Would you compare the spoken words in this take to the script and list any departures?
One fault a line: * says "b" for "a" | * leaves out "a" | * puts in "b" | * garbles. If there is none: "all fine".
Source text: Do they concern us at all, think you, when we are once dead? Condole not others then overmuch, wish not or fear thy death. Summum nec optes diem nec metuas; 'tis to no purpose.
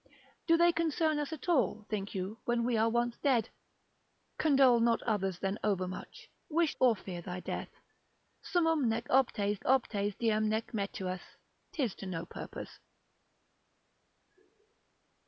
* leaves out "not"
* puts in "optes"